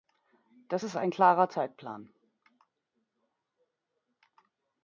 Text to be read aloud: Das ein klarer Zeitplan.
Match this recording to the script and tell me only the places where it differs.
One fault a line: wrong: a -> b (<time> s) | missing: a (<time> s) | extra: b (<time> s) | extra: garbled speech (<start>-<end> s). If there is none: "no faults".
extra: ist (0.8 s)